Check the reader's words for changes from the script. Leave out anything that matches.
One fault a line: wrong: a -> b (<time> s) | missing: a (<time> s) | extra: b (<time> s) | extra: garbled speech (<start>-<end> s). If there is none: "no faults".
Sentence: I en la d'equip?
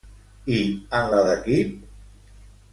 no faults